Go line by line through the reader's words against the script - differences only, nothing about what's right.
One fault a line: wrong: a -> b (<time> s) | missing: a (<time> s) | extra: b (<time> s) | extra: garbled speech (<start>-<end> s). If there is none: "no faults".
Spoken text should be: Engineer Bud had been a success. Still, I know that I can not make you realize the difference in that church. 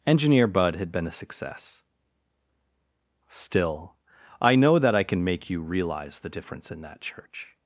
missing: not (5.2 s)